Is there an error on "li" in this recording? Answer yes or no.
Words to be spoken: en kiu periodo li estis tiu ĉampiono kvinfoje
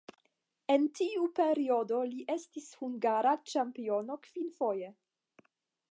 no